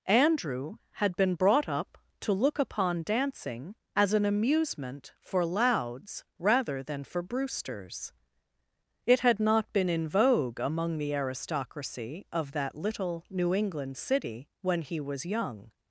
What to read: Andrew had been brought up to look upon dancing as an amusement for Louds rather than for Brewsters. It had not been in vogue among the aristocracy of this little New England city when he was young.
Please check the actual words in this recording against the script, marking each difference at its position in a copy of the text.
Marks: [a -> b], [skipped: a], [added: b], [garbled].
Andrew had been brought up to look upon dancing as an amusement for Louds rather than for Brewsters. It had not been in vogue among the aristocracy of [this -> that] little New England city when he was young.